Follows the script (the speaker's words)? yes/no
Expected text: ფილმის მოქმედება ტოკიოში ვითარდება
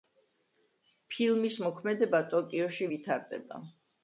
yes